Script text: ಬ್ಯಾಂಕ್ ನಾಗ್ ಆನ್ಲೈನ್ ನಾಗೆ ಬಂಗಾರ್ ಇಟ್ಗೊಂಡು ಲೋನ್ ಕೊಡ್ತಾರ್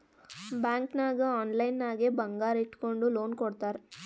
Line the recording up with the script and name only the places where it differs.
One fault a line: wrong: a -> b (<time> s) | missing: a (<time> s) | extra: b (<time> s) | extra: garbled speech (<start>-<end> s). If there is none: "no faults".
no faults